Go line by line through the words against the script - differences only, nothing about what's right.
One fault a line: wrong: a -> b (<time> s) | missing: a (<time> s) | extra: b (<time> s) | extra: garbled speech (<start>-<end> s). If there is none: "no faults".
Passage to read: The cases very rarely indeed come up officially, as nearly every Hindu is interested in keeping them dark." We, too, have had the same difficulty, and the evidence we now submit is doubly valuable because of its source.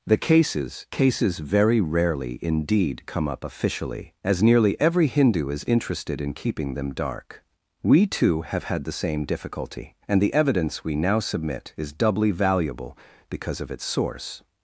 extra: cases (0.9 s)